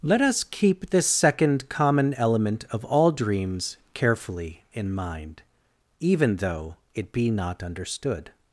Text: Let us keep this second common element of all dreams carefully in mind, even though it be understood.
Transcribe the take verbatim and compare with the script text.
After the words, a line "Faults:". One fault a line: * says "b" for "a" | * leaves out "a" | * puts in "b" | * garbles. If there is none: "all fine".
Let us keep this second common element of all dreams carefully in mind, even though it be not understood.
Faults:
* puts in "not"